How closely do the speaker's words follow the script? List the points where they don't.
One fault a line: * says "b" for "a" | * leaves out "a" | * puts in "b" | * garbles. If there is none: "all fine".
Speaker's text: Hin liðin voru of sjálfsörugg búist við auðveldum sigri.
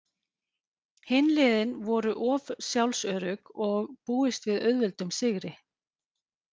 * puts in "og"